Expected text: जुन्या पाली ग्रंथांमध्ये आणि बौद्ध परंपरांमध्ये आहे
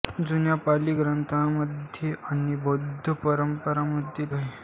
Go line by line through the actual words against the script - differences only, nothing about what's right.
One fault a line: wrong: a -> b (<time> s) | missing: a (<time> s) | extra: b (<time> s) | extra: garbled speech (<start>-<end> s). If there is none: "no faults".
no faults